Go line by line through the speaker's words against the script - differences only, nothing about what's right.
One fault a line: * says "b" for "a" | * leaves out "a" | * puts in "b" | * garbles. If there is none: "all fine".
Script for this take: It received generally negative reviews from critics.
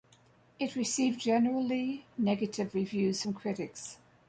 all fine